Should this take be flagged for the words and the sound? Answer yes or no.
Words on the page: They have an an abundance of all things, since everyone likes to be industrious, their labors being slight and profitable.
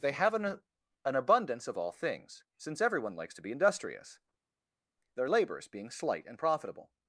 no